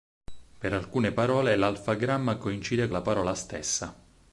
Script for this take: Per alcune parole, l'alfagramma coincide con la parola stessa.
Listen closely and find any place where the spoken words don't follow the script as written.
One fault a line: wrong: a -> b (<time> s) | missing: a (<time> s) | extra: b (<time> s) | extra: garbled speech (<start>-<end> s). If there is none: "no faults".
missing: con (2.9 s)